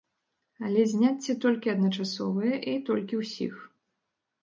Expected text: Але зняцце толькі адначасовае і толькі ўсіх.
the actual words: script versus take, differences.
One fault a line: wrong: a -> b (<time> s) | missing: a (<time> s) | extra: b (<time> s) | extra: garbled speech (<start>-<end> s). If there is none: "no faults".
no faults